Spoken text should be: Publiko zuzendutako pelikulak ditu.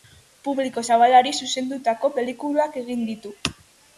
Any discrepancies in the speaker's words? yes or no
yes